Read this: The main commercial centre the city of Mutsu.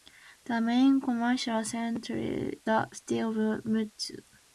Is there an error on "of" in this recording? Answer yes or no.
no